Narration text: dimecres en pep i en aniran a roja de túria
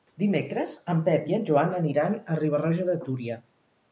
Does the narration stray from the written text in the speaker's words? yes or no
yes